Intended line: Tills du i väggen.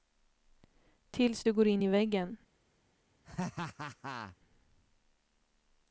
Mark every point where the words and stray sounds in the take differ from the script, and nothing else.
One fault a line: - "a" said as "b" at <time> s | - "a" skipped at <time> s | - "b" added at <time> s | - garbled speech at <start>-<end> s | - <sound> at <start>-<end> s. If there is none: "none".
- "går in" added at 1.5 s
- laugh at 3.2-4.4 s